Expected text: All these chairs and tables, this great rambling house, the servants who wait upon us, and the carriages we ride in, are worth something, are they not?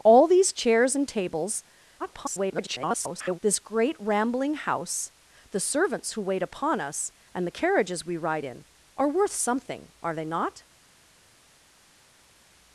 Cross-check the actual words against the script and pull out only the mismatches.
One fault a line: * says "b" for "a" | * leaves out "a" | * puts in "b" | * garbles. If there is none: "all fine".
* garbles